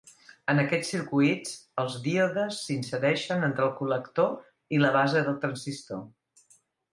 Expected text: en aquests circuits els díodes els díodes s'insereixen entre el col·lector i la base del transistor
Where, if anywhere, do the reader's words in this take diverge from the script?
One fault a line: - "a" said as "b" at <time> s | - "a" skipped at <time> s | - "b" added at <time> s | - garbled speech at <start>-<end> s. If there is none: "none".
- "els díodes" skipped at 2.6 s